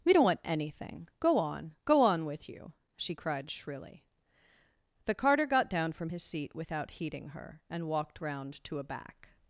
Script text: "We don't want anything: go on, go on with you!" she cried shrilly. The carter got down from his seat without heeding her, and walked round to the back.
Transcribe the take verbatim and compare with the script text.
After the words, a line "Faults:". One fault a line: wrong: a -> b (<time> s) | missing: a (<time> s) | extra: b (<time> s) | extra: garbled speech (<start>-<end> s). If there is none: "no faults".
"We don't want anything: go on, go on with you!" she cried shrilly. The carter got down from his seat without heeding her, and walked round to a back.
Faults:
wrong: the -> a (8.8 s)